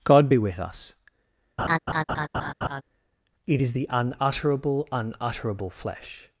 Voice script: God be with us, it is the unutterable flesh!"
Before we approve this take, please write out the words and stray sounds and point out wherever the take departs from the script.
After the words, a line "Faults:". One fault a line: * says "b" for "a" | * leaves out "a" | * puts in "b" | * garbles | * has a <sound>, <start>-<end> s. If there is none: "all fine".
God be with us, it is the unutterable unutterable flesh!"
Faults:
* has a laugh, 1.6-2.8 s
* puts in "unutterable"